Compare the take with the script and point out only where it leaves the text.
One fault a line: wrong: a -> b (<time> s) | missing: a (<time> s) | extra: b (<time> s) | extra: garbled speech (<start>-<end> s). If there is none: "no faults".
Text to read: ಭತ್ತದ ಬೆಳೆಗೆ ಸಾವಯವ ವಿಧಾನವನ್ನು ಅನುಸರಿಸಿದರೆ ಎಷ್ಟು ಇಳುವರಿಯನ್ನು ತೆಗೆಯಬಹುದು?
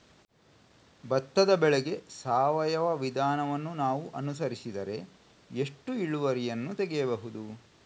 extra: ನಾವು (3.7 s)